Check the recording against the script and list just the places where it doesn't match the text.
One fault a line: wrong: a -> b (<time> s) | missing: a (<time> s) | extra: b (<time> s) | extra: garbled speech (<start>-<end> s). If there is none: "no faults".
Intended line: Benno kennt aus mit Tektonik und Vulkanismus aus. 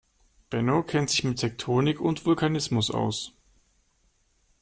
wrong: aus -> sich (1.1 s)